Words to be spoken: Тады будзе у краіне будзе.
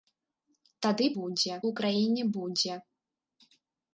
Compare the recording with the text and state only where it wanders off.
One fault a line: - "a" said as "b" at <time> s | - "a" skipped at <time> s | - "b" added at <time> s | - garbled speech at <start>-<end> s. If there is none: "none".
none